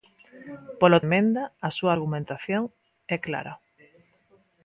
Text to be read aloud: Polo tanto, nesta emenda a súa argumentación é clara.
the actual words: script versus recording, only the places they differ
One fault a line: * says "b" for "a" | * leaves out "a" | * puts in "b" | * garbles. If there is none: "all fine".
* leaves out "tanto nesta"